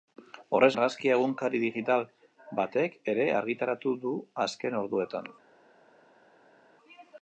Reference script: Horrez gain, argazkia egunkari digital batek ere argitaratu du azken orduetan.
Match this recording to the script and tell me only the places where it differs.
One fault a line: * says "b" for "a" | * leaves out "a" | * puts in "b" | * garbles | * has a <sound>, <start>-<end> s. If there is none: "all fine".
* leaves out "gain"